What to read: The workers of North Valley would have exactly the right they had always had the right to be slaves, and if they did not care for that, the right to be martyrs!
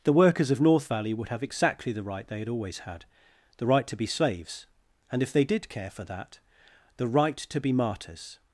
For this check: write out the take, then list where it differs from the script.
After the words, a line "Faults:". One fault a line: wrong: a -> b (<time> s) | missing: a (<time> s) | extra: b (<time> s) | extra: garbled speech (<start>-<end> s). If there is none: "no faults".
The workers of North Valley would have exactly the right they had always had the right to be slaves, and if they did care for that, the right to be martyrs!
Faults:
missing: not (5.7 s)